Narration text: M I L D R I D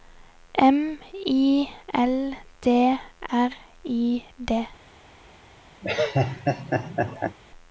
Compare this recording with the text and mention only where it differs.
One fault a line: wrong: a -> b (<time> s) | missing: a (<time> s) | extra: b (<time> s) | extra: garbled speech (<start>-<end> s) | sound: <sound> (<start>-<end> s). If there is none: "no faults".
sound: laugh (5.8-7.4 s)